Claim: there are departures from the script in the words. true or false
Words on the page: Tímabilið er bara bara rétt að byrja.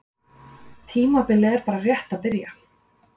true